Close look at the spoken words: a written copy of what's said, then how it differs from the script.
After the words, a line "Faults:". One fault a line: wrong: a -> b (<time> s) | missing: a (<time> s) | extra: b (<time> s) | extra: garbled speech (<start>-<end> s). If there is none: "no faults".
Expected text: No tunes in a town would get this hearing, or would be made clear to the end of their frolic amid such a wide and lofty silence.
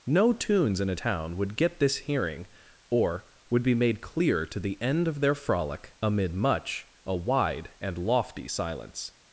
No tunes in a town would get this hearing, or would be made clear to the end of their frolic amid much a wide and lofty silence.
Faults:
wrong: such -> much (6.3 s)